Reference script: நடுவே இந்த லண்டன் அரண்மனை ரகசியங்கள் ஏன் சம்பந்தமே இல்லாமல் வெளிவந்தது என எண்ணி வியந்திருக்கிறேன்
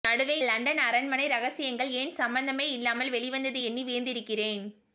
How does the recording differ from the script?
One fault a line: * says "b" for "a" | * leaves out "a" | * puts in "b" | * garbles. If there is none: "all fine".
* leaves out "இந்த"
* leaves out "என"